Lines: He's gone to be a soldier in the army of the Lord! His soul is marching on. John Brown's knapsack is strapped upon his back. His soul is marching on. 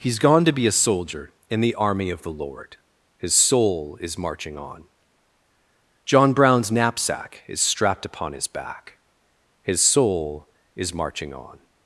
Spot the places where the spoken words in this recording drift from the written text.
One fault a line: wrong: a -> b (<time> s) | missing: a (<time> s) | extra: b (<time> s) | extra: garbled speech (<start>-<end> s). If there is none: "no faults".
no faults